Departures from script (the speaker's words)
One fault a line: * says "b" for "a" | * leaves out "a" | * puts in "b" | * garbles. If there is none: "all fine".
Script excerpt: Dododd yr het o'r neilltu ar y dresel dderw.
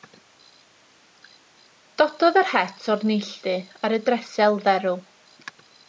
all fine